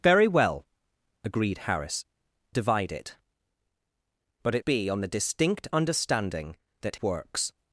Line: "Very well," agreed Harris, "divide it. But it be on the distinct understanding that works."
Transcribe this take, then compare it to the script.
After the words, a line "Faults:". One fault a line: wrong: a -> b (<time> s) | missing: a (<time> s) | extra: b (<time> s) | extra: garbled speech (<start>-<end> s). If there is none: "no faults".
"Very well," agreed Harris, "divide it. But it be on the distinct understanding that works."
Faults:
no faults